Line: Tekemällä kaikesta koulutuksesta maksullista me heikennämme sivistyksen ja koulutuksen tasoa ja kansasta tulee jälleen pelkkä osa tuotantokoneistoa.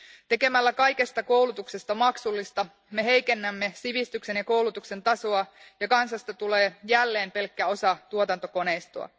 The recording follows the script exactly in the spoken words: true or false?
true